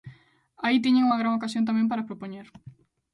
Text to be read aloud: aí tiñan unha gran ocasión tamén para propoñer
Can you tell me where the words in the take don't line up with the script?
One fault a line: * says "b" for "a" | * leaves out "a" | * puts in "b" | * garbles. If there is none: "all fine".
all fine